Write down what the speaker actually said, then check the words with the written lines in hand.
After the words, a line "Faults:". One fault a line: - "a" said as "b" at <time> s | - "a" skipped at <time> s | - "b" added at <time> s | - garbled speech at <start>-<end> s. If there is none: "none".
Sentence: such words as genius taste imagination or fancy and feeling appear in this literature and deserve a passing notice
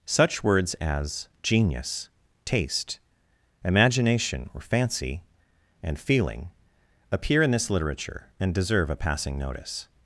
such words as genius taste imagination or fancy and feeling appear in this literature and deserve a passing notice
Faults:
none